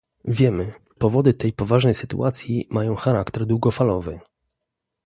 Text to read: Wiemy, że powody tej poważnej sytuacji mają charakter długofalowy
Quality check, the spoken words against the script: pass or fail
fail